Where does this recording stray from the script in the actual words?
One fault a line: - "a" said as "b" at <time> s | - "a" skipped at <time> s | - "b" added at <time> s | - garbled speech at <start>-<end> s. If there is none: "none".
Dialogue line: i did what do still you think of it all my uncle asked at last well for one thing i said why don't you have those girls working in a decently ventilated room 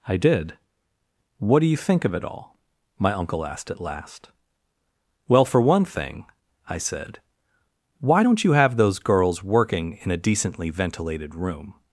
- "still" skipped at 1.6 s